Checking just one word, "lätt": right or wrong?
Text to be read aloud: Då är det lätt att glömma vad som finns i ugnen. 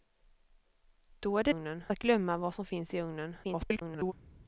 wrong